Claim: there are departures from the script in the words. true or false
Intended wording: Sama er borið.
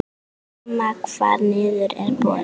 true